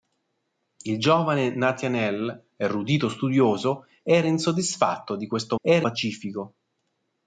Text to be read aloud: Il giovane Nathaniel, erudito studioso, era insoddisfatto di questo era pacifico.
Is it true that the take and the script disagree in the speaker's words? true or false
false